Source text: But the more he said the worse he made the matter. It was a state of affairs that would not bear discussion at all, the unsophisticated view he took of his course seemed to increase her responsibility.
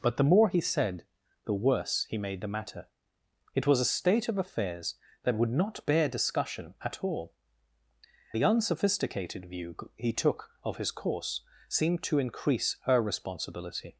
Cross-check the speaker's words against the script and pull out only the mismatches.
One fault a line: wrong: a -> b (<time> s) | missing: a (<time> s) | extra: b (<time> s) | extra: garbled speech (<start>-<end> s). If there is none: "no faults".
no faults